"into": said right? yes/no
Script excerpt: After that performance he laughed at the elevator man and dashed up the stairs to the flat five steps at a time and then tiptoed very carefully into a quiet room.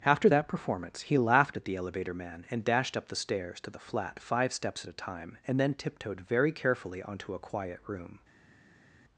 no